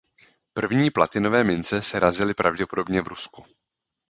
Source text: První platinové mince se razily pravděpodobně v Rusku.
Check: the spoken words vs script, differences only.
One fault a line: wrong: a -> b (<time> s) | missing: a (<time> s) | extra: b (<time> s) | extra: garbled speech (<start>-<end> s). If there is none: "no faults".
no faults